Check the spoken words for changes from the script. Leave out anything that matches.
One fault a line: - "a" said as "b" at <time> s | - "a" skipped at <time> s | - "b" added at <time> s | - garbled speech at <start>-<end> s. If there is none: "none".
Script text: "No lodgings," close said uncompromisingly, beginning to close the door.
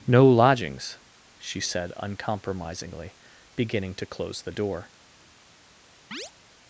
- "close" said as "she" at 1.4 s